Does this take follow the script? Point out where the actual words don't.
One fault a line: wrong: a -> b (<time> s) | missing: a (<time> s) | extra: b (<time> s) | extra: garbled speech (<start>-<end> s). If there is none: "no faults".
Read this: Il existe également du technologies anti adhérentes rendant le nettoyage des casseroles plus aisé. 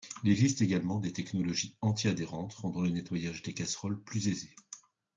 wrong: du -> des (1.0 s)